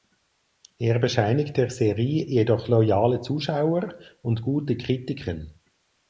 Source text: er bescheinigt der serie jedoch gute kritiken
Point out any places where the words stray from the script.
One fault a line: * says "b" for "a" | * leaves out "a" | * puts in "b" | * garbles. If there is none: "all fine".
* puts in "loyale zuschauer und"